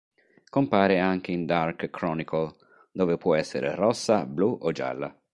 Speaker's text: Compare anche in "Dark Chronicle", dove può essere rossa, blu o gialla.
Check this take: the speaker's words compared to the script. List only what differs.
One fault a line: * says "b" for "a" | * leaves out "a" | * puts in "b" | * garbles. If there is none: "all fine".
all fine